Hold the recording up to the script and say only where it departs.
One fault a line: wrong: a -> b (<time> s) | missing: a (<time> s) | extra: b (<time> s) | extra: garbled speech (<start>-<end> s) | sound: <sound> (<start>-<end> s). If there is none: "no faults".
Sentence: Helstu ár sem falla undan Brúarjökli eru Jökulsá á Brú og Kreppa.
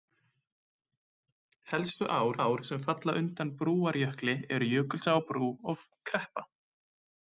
extra: ár (2.4 s)